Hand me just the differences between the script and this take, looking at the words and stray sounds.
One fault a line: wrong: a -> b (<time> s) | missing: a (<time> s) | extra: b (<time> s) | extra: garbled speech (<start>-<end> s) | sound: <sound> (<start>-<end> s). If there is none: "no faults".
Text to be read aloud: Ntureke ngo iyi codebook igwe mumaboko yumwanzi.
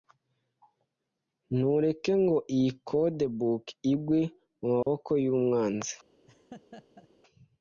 sound: dropout (4.8-4.9 s)
sound: laugh (6.3-7.1 s)